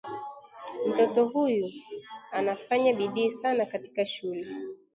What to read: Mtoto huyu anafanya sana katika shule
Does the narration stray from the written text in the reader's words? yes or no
yes